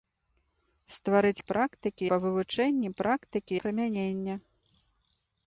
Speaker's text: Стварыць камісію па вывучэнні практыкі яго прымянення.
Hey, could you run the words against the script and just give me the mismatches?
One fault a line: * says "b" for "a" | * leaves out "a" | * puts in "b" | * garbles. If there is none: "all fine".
* says "практыкі" for "камісію"
* leaves out "яго"